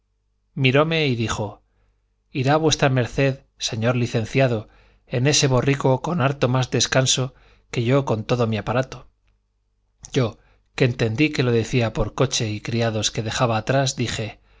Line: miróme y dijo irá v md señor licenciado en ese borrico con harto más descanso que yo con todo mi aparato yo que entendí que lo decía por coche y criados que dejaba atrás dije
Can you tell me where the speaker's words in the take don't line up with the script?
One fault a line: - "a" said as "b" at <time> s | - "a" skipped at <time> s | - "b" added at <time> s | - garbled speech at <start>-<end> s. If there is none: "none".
none